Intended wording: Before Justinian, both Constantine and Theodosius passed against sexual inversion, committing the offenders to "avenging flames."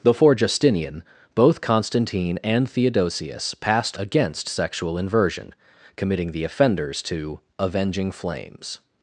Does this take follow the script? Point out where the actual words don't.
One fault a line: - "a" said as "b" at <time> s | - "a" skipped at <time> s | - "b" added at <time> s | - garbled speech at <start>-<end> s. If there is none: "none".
none